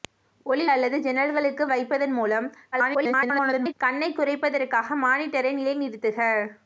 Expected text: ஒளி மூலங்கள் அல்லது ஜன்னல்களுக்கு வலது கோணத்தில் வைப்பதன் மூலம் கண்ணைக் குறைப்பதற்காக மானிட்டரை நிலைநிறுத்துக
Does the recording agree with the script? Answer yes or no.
no